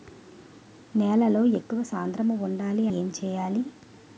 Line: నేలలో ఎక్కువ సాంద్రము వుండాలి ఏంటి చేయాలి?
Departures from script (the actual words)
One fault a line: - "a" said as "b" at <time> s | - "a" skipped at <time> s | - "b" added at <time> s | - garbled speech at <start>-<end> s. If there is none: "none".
none